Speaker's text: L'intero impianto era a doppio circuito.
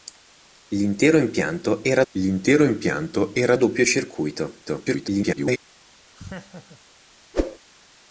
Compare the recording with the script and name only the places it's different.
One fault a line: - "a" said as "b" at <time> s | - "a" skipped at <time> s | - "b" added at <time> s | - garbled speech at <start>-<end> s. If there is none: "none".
- "l'intero impianto era" added at 2.1 s
- garbled speech at 4.7-5.6 s